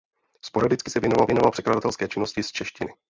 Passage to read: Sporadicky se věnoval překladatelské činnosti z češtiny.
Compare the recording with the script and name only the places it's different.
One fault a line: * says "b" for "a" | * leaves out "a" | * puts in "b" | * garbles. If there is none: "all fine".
* puts in "věnoval"